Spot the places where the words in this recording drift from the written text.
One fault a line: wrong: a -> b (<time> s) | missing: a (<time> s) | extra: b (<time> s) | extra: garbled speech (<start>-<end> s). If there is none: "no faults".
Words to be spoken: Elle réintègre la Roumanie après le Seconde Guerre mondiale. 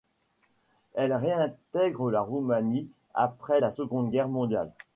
wrong: le -> la (3.6 s)